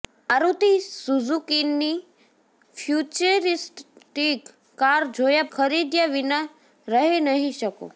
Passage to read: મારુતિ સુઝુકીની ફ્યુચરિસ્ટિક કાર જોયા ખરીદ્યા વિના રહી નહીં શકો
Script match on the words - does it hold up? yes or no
yes